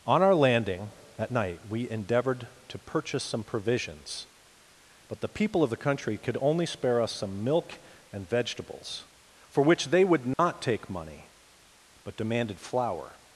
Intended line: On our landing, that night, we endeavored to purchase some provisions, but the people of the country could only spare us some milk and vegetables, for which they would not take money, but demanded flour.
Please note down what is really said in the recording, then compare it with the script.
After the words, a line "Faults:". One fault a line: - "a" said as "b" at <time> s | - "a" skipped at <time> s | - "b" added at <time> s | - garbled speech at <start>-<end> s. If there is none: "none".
On our landing, that night, we endeavored to purchase some provisions, but the people of the country could only spare us some milk and vegetables, for which they would not take money, but demanded flour.
Faults:
none